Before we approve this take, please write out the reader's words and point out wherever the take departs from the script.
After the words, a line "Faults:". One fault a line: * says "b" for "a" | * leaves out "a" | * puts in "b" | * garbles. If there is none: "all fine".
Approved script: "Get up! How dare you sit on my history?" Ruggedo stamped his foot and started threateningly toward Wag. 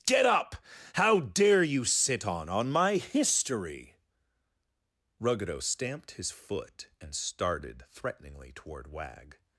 "Get up! How dare you sit on on my history?" Ruggedo stamped his foot and started threateningly toward Wag.
Faults:
* puts in "on"